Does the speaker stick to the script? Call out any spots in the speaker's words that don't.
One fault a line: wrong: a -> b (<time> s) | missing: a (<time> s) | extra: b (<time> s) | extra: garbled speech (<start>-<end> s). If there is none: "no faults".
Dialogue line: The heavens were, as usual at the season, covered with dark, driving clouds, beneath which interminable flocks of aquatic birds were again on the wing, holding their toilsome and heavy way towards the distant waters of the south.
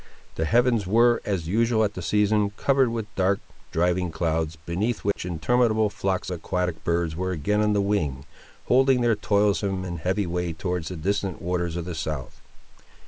missing: of (6.3 s)